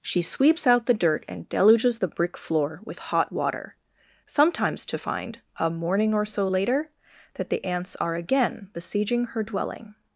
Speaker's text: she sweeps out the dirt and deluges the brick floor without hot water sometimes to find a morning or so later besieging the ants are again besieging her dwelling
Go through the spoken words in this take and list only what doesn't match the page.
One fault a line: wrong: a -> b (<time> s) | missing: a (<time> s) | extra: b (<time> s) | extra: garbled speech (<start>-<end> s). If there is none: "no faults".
wrong: without -> with (2.8 s)
wrong: besieging -> that (7.3 s)